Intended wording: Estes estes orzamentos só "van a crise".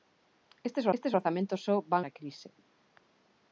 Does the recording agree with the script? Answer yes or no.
yes